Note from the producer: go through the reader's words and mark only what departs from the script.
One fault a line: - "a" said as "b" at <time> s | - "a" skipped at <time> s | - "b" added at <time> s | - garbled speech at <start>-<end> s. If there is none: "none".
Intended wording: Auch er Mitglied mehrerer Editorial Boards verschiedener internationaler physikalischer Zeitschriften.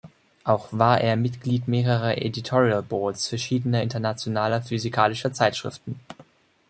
- "war" added at 0.7 s